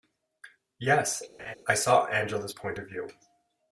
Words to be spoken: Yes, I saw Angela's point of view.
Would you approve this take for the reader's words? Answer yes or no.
yes